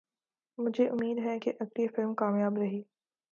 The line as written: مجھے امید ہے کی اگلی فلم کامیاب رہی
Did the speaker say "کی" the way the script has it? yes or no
yes